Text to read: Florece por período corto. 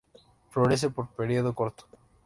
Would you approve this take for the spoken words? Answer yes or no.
yes